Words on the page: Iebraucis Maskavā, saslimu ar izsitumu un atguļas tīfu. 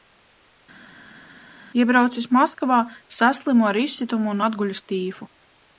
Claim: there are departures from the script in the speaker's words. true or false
false